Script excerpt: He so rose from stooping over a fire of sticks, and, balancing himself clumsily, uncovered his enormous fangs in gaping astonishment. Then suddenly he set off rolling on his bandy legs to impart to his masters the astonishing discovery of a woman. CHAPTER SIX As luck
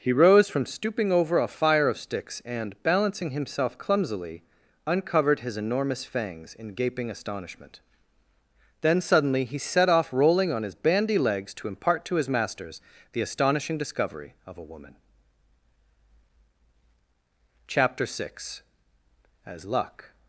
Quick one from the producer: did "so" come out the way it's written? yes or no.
no